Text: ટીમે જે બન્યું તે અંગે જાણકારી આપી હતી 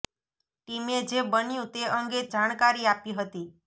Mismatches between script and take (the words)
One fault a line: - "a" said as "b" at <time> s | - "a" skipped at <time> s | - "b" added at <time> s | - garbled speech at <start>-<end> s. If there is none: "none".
none